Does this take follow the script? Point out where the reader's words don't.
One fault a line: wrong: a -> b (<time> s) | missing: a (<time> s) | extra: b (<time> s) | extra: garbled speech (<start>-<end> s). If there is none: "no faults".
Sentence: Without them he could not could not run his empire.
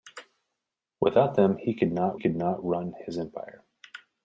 no faults